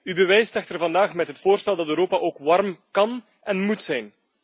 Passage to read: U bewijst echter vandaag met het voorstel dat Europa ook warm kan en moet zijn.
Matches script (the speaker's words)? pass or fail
pass